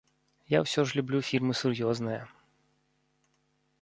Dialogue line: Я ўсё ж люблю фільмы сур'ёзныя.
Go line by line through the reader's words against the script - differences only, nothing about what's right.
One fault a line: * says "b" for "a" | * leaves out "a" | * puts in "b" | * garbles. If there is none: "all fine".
all fine